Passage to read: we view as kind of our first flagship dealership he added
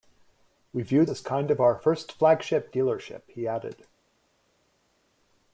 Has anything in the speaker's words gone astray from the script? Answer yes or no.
no